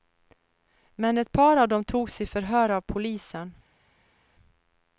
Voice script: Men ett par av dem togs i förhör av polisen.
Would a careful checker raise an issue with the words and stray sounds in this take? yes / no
no